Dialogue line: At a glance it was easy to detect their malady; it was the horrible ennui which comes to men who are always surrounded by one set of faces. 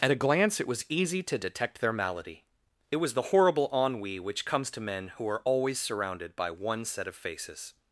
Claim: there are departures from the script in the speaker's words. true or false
false